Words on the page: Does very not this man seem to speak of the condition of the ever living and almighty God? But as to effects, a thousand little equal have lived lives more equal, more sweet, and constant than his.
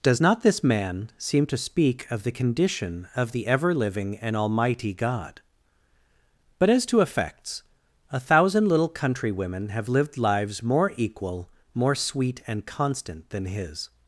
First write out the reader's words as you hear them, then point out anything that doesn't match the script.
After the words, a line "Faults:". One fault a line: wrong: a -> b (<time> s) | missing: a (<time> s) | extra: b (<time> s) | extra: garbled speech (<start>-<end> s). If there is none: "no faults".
Does not this man seem to speak of the condition of the ever living and almighty God? But as to effects, a thousand little countrywomen have lived lives more equal, more sweet, and constant than his.
Faults:
missing: very (0.2 s)
wrong: equal -> countrywomen (8.9 s)